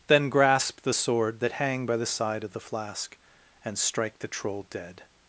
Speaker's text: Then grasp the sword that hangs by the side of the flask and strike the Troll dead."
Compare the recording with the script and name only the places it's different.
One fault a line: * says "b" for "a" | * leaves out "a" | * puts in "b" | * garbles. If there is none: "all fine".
* says "hang" for "hangs"